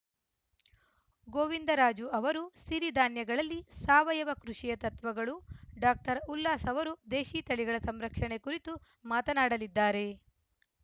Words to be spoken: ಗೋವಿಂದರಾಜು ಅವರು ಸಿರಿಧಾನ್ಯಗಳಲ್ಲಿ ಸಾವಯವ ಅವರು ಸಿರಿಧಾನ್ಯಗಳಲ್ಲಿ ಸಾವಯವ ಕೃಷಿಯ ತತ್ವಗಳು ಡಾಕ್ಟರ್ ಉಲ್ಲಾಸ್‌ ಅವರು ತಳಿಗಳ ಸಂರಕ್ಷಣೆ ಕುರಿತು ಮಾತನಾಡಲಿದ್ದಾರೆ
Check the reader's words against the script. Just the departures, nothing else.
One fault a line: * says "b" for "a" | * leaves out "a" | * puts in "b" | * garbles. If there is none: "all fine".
* leaves out "ಅವರು ಸಿರಿಧಾನ್ಯಗಳಲ್ಲಿ ಸಾವಯವ"
* puts in "ದೇಶೀ"